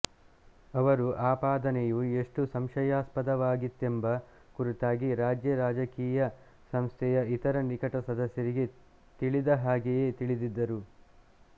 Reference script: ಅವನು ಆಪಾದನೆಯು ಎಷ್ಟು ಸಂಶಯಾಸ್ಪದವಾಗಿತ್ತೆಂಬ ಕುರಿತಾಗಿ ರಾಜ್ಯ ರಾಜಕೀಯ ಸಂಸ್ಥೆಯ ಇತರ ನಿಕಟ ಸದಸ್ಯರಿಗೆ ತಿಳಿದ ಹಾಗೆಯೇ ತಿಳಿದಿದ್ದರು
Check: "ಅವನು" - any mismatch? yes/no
yes